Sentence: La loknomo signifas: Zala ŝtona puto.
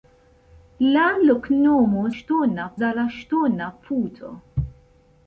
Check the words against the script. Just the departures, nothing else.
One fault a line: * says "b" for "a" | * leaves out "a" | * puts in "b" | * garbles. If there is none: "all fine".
* says "ŝtona" for "signifas"